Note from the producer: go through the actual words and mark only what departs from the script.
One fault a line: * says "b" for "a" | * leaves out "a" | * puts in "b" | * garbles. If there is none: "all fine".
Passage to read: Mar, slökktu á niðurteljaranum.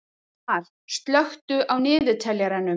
all fine